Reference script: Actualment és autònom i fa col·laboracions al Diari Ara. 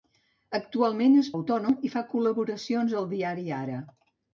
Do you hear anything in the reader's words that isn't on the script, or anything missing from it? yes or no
no